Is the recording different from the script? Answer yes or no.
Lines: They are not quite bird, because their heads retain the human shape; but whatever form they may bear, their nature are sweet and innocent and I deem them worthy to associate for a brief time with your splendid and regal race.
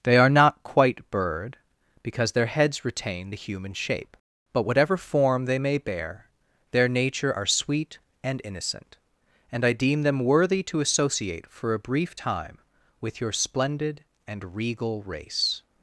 no